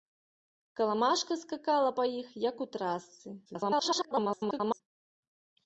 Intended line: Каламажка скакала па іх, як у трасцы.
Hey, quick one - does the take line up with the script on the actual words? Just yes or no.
no